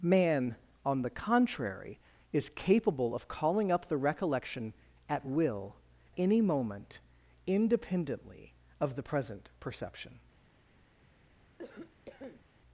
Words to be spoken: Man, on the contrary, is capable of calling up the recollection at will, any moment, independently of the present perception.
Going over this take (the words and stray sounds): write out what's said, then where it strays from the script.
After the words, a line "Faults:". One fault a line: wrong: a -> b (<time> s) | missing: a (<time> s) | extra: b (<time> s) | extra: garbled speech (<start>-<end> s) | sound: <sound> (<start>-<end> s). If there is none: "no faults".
Man, on the contrary, is capable of calling up the recollection at will, any moment, independently of the present perception.
Faults:
sound: cough (11.6-12.5 s)